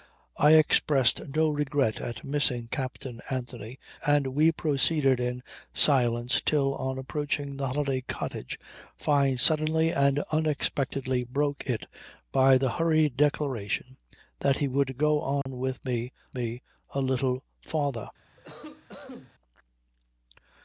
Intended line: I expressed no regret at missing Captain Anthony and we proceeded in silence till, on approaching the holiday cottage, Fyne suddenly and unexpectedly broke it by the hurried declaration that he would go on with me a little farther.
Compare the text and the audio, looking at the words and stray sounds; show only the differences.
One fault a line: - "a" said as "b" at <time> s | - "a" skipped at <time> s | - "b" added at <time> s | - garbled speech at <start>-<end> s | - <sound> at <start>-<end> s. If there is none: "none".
- dropout at 15.4-15.5 s
- "me" added at 16.3 s
- cough at 18.4-19.3 s